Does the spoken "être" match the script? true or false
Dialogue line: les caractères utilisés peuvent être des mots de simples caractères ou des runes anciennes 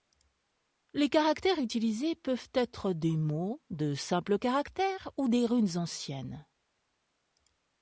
true